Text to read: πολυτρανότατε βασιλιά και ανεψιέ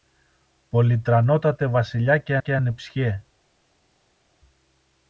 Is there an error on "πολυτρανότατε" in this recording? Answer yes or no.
no